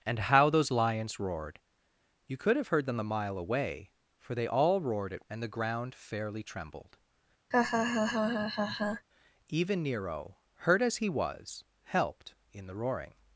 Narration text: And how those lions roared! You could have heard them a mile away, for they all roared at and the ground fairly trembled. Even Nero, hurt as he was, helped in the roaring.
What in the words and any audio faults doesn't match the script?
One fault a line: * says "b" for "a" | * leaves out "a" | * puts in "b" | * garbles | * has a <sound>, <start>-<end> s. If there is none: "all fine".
* has a laugh, 7.5-9.1 s